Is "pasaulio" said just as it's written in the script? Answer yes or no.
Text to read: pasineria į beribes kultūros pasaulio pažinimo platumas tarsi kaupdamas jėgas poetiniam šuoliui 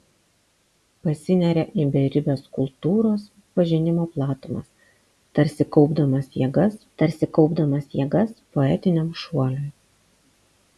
no